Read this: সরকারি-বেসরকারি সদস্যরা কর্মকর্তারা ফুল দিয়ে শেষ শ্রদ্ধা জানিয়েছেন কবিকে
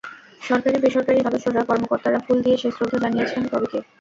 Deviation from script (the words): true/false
false